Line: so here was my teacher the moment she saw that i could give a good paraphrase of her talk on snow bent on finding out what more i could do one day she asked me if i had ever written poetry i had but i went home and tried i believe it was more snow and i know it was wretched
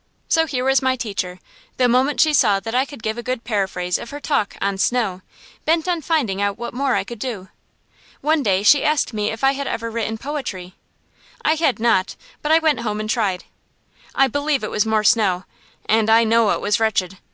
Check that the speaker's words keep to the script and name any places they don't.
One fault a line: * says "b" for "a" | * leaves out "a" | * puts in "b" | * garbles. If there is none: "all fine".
* puts in "not"